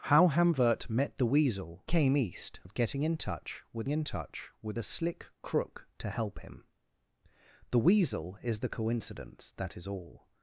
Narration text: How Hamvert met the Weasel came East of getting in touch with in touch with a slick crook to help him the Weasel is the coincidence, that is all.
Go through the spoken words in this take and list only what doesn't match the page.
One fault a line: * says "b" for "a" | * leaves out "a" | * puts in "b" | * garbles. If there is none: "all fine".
all fine